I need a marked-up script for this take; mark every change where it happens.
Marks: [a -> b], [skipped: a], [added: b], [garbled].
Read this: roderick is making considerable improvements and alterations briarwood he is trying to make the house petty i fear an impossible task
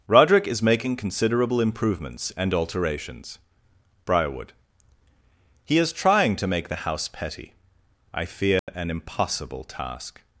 roderick is making considerable improvements and alterations briarwood he is trying to make the house petty i fear an impossible task